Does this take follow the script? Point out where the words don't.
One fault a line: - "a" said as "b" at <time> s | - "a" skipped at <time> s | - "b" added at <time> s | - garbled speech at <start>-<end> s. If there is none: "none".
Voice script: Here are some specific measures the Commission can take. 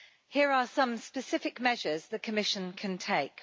none